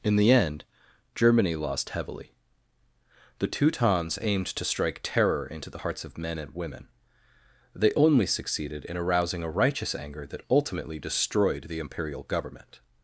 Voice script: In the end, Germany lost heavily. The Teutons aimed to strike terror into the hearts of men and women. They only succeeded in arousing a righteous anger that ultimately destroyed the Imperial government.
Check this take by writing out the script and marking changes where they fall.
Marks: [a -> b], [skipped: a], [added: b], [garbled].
In the end, Germany lost heavily. The Teutons aimed to strike terror into the hearts of men and women. They only succeeded in arousing a righteous anger that ultimately destroyed the Imperial government.